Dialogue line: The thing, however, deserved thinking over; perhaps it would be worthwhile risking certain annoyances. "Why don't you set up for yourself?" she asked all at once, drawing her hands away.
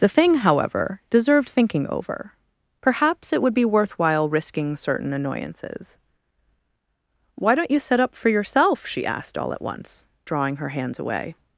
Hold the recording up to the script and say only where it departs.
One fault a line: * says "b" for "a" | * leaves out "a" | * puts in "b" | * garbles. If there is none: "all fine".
all fine